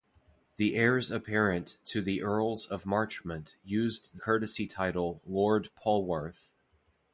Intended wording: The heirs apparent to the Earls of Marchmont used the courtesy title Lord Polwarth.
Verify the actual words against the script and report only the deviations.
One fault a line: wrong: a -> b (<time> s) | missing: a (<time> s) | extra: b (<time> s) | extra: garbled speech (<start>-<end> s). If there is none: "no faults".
missing: the (4.2 s)